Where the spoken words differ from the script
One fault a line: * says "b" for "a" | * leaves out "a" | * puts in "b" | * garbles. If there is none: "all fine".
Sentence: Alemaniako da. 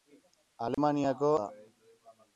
all fine